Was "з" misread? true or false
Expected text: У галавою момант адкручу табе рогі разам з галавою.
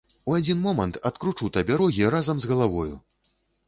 false